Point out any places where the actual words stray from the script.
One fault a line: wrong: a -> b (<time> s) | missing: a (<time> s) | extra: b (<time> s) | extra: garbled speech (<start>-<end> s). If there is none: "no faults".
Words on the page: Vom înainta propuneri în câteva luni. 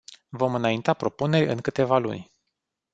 no faults